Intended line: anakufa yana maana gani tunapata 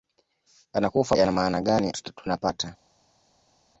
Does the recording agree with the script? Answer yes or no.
yes